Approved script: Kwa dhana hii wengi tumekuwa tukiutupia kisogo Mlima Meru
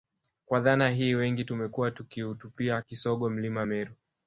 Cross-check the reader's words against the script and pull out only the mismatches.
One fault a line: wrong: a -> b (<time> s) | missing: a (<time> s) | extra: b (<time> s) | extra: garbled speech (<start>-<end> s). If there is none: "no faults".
no faults